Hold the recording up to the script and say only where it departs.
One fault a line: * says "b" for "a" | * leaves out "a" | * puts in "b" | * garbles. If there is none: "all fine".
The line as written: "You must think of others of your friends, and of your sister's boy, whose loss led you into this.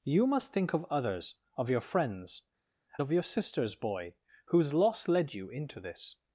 * leaves out "and"